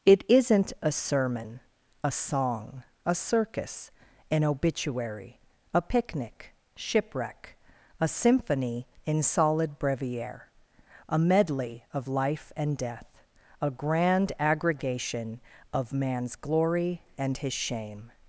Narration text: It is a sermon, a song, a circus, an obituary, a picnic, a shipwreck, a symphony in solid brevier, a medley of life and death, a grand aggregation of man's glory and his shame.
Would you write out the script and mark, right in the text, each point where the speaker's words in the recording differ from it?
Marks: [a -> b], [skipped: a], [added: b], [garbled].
It [is -> isn't] a sermon, a song, a circus, an obituary, a picnic, [skipped: a] shipwreck, a symphony in solid brevier, a medley of life and death, a grand aggregation of man's glory and his shame.